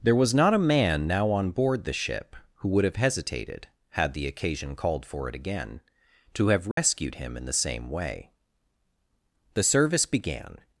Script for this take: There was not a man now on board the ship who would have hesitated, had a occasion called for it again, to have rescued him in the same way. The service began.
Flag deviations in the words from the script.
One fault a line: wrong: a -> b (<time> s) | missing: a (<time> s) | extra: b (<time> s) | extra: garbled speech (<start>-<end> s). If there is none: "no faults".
wrong: a -> the (4.1 s)